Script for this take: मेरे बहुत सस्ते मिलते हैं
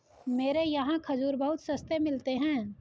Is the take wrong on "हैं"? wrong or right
right